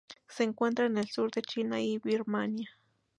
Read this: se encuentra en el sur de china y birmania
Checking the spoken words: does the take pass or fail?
pass